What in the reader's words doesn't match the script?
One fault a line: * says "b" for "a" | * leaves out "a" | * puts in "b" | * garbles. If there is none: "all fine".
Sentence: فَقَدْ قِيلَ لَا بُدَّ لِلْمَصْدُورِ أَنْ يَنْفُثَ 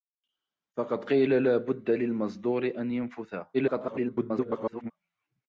* garbles